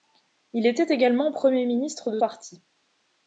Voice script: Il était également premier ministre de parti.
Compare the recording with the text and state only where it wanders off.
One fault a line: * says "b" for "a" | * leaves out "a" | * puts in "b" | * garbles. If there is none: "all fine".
all fine